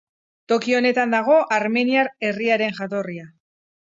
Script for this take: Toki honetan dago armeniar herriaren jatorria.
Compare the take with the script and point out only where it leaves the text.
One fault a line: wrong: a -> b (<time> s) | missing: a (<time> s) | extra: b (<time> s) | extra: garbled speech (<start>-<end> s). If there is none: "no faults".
no faults